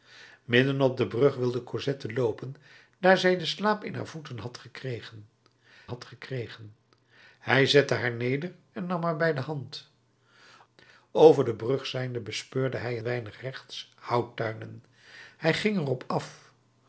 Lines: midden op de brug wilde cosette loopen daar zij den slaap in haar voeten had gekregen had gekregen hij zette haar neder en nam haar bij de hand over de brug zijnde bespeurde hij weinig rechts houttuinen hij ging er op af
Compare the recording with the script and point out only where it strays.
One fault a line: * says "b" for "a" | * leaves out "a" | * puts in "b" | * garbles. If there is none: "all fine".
all fine